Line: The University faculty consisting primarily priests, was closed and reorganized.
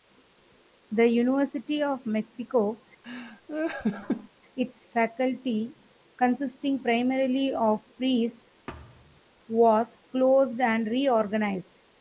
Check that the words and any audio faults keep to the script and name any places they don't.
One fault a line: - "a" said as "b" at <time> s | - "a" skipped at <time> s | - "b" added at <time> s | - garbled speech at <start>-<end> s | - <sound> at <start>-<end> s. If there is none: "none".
- "of Mexico its" added at 1.8 s
- laugh at 3.0-4.3 s
- "of" added at 7.5 s
- thud at 8.7-9.2 s